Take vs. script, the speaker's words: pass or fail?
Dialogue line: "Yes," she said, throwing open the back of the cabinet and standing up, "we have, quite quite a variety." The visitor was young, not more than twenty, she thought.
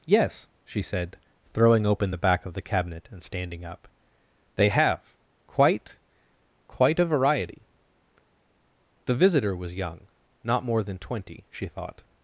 fail